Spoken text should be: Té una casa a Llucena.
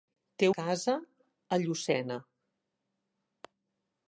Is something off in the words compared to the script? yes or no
yes